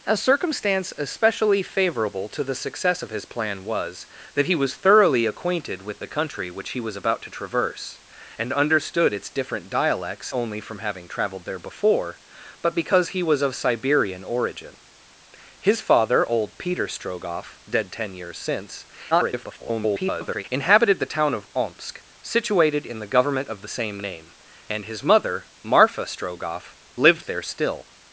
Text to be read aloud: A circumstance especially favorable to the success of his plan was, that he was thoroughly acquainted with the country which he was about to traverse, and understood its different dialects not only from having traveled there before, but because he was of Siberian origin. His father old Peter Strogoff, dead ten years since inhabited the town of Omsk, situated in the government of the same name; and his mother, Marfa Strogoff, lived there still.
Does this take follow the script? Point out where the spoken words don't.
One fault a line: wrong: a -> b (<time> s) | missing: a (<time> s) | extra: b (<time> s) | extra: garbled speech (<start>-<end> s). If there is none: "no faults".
missing: not (10.3 s)
extra: garbled speech (19.1-20.4 s)